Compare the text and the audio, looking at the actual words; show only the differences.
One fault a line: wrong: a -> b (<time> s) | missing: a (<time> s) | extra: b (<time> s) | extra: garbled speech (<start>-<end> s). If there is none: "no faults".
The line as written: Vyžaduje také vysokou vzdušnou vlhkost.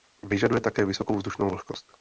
no faults